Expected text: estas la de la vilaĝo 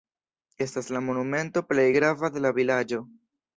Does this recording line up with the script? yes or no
no